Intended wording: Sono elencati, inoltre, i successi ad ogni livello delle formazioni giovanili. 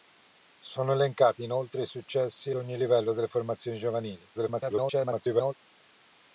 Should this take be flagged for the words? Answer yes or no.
yes